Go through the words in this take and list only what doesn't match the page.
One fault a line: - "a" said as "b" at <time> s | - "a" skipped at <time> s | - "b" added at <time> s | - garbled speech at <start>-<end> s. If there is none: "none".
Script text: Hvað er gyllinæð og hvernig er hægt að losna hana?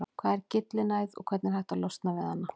- "við" added at 2.2 s